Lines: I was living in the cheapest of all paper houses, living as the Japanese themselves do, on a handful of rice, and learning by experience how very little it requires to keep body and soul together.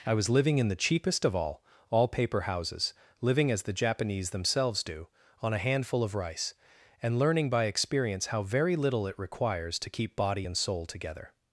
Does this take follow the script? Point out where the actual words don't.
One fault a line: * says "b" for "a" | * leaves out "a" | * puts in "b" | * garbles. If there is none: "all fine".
* puts in "all"